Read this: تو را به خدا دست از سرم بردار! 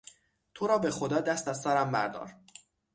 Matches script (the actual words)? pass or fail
pass